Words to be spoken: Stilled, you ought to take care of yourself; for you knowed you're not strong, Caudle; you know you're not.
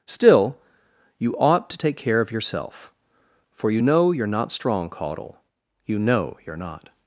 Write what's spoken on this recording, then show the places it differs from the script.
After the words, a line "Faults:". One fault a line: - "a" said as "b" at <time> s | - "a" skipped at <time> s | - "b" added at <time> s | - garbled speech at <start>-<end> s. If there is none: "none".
Still, you ought to take care of yourself; for you know you're not strong, Caudle; you know you're not.
Faults:
- "Stilled" said as "Still" at 0.1 s
- "knowed" said as "know" at 3.8 s